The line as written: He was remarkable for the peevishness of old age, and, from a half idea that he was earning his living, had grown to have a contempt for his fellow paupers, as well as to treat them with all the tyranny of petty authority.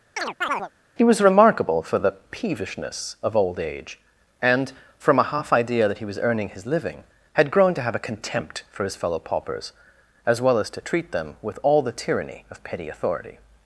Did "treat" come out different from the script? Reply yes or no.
no